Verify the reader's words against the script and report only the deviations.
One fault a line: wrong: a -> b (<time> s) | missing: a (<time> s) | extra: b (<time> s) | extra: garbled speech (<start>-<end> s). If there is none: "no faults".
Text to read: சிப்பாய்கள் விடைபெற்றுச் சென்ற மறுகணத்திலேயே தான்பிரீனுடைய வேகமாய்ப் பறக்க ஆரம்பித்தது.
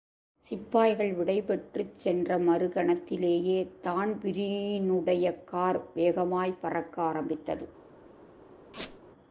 extra: கார் (5.4 s)